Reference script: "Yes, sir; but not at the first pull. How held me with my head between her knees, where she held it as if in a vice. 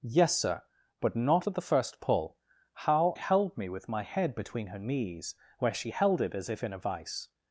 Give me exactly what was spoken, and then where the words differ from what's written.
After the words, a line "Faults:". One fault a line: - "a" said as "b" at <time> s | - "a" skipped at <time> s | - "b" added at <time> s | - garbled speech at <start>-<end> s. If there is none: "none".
"Yes, sir; but not at the first pull. How held me with my head between her knees, where she held it as if in a vice.
Faults:
none